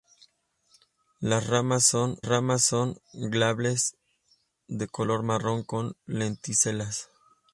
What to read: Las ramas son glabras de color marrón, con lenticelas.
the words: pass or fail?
fail